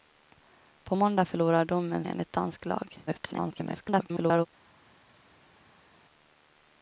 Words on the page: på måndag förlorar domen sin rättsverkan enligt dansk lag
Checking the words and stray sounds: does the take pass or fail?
fail